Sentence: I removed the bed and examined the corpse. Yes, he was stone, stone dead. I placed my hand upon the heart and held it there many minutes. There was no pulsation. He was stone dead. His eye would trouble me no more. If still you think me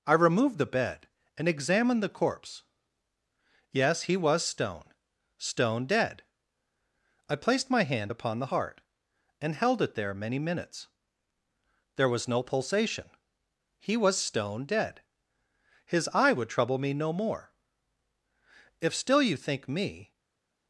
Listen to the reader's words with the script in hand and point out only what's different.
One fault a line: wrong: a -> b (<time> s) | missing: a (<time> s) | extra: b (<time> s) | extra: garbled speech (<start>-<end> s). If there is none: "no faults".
no faults